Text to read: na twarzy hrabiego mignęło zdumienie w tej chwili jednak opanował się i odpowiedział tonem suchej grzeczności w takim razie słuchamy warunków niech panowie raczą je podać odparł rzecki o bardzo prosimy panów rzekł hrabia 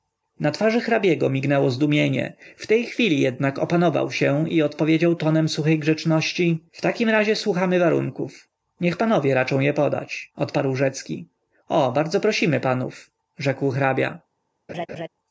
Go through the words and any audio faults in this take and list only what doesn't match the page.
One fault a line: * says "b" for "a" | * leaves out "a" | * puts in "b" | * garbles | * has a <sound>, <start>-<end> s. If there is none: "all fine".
* has a laugh, 14.7-15.1 s